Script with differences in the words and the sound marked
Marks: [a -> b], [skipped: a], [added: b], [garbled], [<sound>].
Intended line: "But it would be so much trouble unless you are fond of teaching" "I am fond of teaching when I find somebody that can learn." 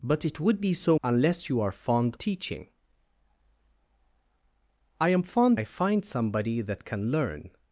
"But it would be so [skipped: much trouble] unless you are fond [skipped: of] teaching" "I am fond [skipped: of teaching when] I find somebody that can learn."